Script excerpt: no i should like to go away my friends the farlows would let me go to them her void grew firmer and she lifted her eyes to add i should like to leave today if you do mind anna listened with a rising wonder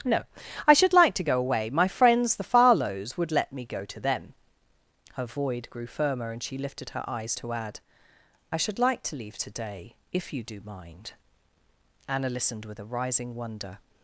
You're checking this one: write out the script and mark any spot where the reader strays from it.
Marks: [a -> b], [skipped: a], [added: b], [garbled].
no i should like to go away my friends the farlows would let me go to them her void grew firmer and she lifted her eyes to add i should like to leave today if you do mind anna listened with a rising wonder